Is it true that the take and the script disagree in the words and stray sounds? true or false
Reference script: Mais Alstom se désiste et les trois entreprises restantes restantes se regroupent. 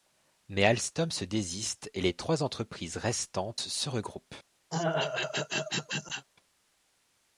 true